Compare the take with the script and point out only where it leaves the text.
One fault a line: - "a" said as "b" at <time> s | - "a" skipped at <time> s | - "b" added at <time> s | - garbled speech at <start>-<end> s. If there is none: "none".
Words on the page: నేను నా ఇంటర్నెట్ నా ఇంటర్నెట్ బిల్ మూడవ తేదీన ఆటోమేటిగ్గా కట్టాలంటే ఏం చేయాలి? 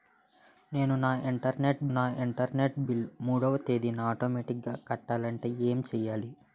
none